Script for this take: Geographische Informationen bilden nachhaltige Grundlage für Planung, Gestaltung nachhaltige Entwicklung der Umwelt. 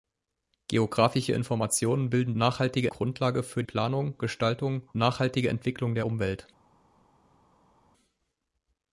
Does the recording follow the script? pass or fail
pass